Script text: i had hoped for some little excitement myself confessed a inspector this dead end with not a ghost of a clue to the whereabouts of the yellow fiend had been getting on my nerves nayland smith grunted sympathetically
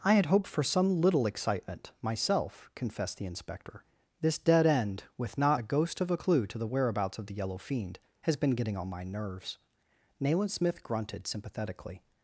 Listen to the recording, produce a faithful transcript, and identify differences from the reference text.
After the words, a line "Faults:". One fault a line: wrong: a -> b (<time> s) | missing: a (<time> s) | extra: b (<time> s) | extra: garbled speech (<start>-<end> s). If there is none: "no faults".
i had hoped for some little excitement myself confessed the inspector this dead end with not a ghost of a clue to the whereabouts of the yellow fiend has been getting on my nerves nayland smith grunted sympathetically
Faults:
wrong: a -> the (3.2 s)
wrong: had -> has (8.2 s)